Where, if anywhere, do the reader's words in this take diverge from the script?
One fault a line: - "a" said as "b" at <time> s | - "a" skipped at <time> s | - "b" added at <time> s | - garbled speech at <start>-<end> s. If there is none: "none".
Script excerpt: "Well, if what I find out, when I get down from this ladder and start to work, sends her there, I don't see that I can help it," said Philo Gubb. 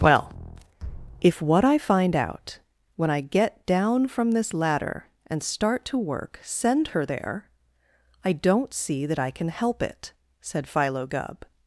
- "sends" said as "send" at 6.4 s